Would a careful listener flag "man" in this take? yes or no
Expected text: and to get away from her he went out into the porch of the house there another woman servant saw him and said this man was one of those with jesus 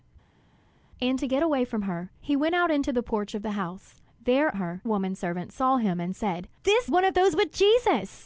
yes